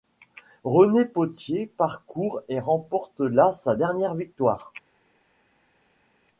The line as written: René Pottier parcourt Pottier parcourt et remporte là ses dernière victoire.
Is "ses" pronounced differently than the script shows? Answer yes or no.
yes